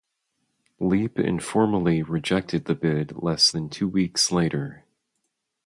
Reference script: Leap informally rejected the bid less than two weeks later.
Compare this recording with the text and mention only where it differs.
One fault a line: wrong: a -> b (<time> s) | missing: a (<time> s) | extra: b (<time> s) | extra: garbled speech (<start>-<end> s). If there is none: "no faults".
no faults